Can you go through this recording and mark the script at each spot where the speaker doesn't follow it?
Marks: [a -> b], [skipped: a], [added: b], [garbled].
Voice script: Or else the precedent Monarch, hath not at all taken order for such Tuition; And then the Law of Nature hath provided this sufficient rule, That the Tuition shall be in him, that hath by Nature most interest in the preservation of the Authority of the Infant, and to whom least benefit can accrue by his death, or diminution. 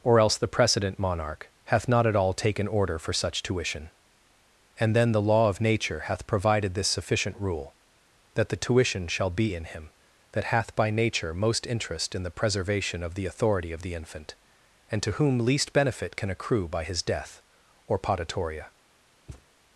Or else the precedent Monarch, hath not at all taken order for such Tuition; And then the Law of Nature hath provided this sufficient rule, That the Tuition shall be in him, that hath by Nature most interest in the preservation of the Authority of the Infant, and to whom least benefit can accrue by his death, or [diminution. -> potatoria]